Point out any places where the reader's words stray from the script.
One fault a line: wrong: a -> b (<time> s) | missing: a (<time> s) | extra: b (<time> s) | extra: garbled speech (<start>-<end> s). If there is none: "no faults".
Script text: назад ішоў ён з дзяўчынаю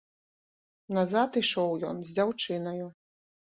no faults